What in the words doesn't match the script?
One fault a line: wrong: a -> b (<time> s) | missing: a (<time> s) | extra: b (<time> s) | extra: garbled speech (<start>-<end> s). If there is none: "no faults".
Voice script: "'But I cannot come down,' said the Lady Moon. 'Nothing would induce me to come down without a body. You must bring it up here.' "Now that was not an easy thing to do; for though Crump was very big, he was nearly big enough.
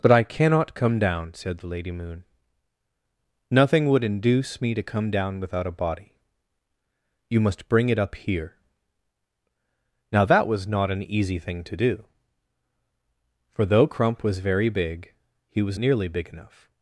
no faults